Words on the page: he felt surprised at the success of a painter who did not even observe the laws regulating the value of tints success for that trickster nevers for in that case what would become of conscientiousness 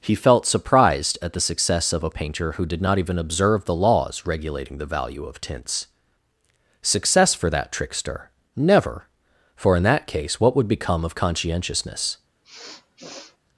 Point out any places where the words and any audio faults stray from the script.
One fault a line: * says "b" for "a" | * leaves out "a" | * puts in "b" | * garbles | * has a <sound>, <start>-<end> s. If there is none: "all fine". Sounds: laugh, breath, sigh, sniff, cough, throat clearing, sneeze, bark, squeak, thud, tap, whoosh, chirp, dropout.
* says "never" for "nevers"
* has a sniff, 12.4-13.4 s